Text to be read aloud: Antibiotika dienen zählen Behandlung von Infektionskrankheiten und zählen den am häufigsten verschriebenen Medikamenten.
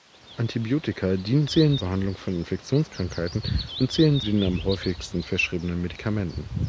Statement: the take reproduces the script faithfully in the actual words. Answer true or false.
true